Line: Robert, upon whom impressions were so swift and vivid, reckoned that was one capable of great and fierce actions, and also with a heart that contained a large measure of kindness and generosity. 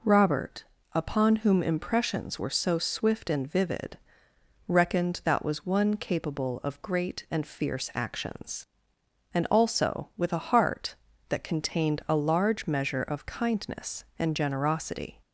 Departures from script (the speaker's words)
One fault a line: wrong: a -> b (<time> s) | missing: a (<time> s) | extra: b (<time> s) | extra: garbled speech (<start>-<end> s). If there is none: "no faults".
no faults